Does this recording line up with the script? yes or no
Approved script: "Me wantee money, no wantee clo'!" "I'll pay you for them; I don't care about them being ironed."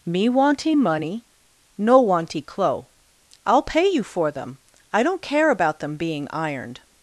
yes